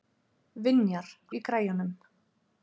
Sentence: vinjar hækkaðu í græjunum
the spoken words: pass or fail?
fail